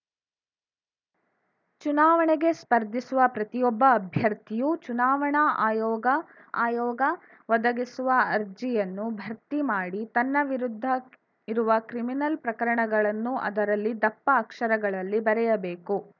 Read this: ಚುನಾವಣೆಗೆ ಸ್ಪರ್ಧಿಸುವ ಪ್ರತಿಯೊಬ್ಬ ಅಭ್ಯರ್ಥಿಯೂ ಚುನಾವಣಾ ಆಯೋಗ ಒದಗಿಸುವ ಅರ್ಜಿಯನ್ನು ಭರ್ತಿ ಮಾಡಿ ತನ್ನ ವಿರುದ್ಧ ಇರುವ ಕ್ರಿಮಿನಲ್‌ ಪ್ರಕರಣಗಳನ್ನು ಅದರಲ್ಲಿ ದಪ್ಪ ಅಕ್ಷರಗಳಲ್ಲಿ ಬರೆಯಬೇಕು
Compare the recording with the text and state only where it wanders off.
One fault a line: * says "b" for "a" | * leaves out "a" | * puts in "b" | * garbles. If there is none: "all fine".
* puts in "ಆಯೋಗ"